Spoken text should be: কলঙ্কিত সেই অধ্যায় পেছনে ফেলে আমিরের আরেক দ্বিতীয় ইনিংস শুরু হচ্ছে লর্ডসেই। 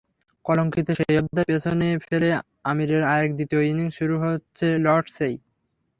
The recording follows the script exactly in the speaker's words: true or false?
true